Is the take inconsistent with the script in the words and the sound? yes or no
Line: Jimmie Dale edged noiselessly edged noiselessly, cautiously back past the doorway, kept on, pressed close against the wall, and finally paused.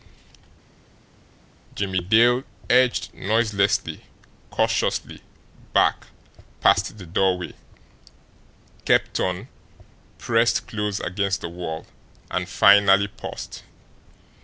yes